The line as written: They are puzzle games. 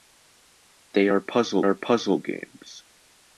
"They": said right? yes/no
yes